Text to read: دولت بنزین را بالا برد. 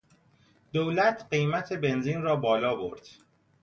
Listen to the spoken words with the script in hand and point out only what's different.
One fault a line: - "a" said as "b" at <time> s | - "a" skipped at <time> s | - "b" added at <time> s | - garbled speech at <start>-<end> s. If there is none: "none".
- "قیمت" added at 1.3 s